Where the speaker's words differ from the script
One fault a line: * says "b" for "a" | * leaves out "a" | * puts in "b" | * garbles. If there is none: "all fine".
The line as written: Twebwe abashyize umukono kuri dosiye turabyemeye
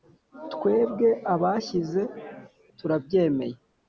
* leaves out "umukono kuri dosiye"